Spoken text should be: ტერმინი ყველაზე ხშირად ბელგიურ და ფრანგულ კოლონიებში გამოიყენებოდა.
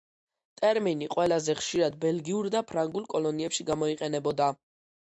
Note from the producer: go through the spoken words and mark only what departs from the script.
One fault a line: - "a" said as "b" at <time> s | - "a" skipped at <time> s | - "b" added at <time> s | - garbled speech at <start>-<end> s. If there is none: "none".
none